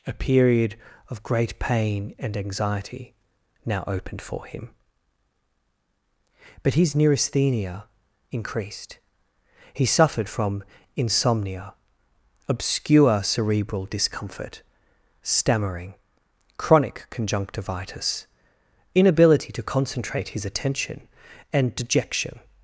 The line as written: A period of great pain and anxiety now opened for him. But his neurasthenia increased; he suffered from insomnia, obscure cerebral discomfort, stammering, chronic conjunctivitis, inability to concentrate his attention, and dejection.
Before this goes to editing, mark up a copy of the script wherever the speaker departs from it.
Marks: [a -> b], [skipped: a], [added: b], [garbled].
A period of great pain and anxiety now opened for him. But his neurasthenia increased; he suffered from insomnia, obscure cerebral discomfort, stammering, chronic conjunctivitis, inability to concentrate his attention, and dejection.